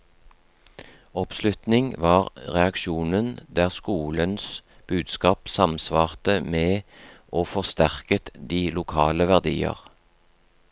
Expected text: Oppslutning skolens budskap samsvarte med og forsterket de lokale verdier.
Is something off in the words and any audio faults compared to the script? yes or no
yes